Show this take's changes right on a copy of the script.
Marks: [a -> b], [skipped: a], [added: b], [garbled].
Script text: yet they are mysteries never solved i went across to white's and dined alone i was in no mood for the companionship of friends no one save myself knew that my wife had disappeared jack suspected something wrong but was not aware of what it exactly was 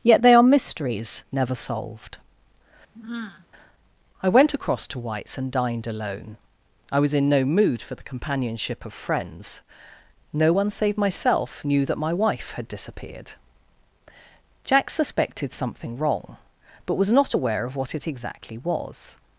yet they are mysteries never solved i went across to white's and dined alone i was in no mood for the companionship of friends no one save myself knew that my wife had disappeared jack suspected something wrong but was not aware of what it exactly was